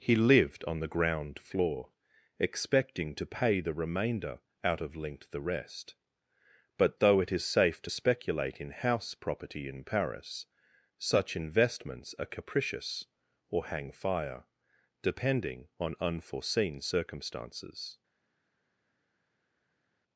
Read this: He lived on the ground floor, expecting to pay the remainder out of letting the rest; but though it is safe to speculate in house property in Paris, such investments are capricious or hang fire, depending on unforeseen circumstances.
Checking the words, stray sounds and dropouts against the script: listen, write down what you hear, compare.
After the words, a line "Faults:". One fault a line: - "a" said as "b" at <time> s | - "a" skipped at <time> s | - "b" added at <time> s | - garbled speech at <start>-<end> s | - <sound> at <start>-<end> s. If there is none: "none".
He lived on the ground floor, expecting to pay the remainder out of linked the rest; but though it is safe to speculate in house property in Paris, such investments are capricious or hang fire, depending on unforeseen circumstances.
Faults:
- "letting" said as "linked" at 5.0 s